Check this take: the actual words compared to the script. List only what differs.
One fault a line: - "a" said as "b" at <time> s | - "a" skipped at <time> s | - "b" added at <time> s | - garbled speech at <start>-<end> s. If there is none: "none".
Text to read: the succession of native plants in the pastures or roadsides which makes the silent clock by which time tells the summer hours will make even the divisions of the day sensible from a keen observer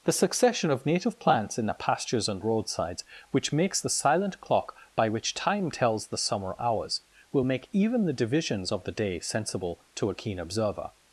- "or" said as "and" at 2.3 s
- "from" said as "to" at 9.9 s